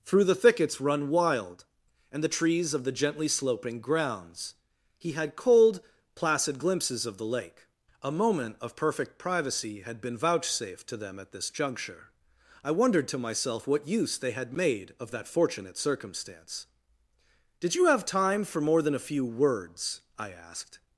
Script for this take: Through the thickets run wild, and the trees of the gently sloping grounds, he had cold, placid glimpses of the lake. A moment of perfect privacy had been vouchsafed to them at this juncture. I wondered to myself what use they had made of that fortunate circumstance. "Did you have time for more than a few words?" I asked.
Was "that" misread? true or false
false